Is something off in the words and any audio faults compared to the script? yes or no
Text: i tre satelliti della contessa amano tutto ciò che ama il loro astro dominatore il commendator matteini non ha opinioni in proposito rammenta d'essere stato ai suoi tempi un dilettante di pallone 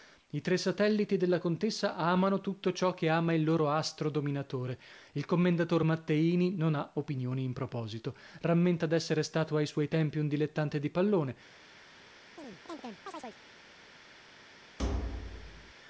yes